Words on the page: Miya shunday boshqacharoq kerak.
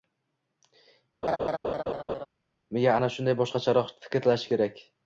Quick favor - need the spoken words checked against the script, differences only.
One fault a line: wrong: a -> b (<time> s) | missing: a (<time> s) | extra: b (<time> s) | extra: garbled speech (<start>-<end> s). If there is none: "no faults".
extra: ana (3.0 s)
extra: fikrlashi (4.1 s)